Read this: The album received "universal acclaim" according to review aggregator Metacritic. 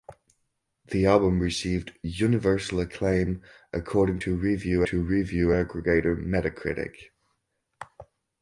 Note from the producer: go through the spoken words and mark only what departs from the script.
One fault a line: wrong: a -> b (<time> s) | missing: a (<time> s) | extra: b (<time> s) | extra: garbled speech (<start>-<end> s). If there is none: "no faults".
extra: to review (4.8 s)